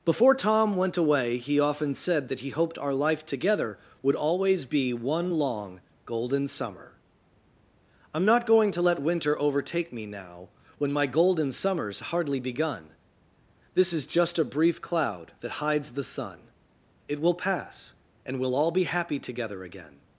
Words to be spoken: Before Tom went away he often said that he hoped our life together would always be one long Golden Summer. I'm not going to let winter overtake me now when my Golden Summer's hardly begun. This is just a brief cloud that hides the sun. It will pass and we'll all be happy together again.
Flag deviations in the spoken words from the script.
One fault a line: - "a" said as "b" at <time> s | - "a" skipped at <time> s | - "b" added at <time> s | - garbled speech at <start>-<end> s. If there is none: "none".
none